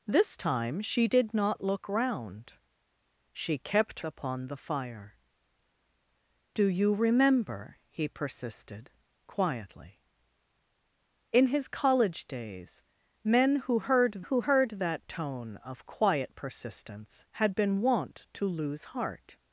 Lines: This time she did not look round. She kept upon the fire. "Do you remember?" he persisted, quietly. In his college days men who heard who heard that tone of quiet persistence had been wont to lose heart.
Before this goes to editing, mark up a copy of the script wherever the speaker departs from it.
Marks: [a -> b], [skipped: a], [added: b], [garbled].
This time she did not look round. She kept upon the fire. "Do you remember?" he persisted, quietly. In his college days men who heard who heard that tone of quiet persistence had been wont to lose heart.